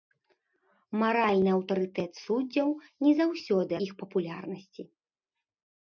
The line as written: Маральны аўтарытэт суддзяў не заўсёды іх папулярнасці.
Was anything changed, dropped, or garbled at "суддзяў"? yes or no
no